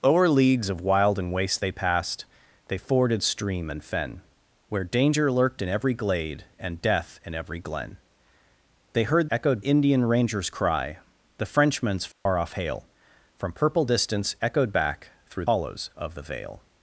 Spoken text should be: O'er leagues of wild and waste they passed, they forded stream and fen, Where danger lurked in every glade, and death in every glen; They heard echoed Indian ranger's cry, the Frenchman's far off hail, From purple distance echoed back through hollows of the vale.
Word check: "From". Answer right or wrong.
right